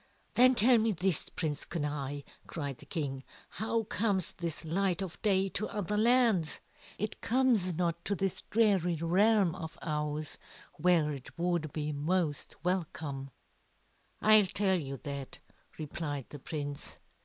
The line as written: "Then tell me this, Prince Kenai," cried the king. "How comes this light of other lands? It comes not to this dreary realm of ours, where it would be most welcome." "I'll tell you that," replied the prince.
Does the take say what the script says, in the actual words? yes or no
no